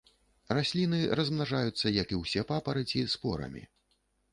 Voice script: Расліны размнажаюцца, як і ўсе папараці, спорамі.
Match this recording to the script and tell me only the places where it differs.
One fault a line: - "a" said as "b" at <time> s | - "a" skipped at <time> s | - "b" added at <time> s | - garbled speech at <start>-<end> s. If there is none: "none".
none